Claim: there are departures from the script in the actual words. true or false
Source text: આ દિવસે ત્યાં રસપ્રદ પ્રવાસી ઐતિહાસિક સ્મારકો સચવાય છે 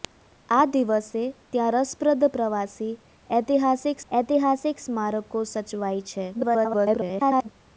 true